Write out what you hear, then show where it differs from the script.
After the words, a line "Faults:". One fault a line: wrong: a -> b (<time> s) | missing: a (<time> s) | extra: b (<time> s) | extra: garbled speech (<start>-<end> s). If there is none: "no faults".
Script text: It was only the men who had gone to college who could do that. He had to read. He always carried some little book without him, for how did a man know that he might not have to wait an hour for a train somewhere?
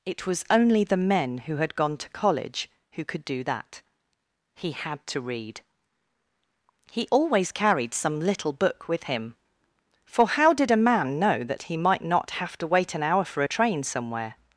It was only the men who had gone to college who could do that. He had to read. He always carried some little book with him, for how did a man know that he might not have to wait an hour for a train somewhere?
Faults:
wrong: without -> with (8.9 s)